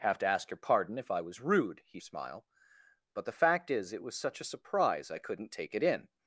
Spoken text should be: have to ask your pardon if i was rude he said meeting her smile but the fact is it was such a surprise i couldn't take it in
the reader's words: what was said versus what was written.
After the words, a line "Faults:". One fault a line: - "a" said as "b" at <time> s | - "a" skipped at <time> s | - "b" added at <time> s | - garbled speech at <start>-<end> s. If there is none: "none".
have to ask your pardon if i was rude he smile but the fact is it was such a surprise i couldn't take it in
Faults:
- "said meeting her" skipped at 2.0 s